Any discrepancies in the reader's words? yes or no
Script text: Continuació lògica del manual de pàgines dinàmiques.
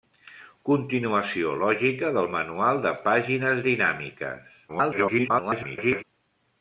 yes